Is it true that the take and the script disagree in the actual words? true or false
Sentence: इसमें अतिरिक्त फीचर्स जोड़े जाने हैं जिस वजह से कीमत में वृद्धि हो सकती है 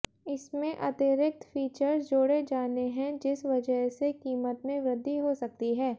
false